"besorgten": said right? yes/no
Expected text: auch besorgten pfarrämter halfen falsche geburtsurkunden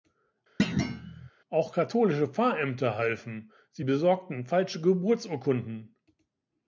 no